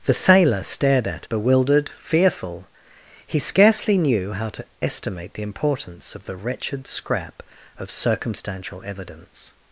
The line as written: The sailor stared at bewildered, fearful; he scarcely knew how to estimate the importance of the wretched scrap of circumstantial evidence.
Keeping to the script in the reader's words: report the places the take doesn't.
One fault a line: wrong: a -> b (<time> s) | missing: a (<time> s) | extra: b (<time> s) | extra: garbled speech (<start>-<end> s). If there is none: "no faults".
no faults